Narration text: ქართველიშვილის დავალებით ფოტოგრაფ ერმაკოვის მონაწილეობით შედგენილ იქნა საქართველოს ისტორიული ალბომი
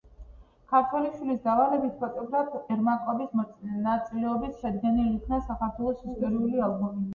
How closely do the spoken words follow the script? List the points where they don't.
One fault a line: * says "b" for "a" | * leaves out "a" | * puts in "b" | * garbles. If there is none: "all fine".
all fine